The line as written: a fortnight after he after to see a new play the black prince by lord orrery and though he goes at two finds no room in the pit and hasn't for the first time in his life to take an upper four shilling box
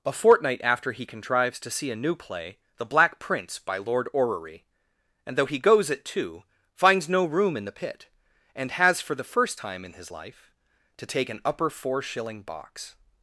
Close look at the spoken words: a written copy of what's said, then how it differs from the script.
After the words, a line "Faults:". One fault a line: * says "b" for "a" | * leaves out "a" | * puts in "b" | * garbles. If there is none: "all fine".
a fortnight after he contrives to see a new play the black prince by lord orrery and though he goes at two finds no room in the pit and has for the first time in his life to take an upper four shilling box
Faults:
* says "contrives" for "after"
* says "has" for "hasn't"